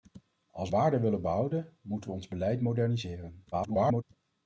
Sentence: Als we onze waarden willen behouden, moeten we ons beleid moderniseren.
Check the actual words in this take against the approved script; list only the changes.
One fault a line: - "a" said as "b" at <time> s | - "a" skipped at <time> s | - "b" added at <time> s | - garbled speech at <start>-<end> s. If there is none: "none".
- "onze" skipped at 0.8 s
- garbled speech at 3.5-4.0 s